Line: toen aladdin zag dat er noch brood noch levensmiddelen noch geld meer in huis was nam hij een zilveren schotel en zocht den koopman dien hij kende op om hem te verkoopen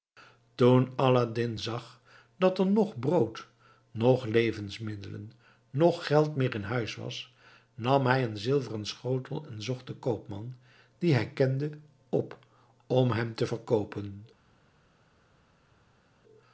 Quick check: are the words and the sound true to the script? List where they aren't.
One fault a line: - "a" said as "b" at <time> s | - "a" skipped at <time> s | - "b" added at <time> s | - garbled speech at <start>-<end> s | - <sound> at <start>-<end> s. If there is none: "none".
none